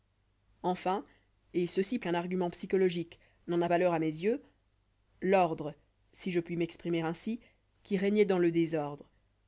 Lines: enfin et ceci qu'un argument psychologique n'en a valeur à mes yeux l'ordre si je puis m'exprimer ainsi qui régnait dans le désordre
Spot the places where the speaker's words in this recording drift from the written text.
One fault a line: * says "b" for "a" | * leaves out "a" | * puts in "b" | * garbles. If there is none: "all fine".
all fine